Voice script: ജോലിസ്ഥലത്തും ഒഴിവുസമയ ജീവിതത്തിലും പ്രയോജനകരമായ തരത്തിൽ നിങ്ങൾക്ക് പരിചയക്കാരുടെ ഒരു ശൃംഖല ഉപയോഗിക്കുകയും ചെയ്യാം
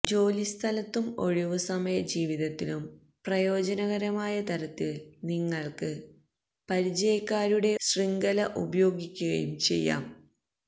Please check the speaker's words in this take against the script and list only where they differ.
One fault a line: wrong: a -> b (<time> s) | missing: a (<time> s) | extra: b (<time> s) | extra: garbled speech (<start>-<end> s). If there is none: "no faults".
missing: ഒരു (7.7 s)